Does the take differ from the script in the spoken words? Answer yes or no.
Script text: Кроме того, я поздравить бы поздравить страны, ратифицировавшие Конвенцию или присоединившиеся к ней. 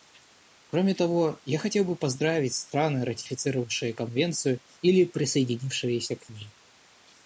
yes